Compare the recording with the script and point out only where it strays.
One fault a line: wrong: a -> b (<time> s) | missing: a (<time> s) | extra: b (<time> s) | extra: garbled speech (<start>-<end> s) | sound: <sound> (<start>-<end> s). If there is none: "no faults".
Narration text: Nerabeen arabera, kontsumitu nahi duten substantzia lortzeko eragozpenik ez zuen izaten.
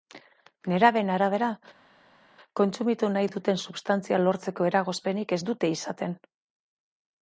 wrong: zuen -> dute (5.5 s)